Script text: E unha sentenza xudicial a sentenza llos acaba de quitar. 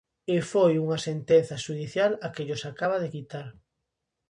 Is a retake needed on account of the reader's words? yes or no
yes